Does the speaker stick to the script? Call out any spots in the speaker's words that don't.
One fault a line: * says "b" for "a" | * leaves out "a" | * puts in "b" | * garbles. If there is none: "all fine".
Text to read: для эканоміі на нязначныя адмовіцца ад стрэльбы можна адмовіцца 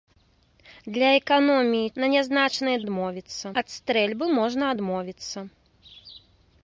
all fine